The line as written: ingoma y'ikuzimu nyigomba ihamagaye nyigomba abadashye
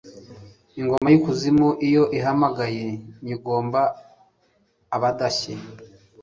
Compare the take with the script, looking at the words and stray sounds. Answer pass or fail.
fail